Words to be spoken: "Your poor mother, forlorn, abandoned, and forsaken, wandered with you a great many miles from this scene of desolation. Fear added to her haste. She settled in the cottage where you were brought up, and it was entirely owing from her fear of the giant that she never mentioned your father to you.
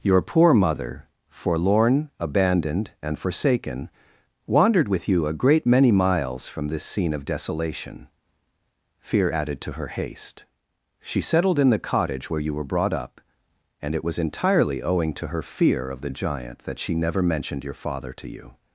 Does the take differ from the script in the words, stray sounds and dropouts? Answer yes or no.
yes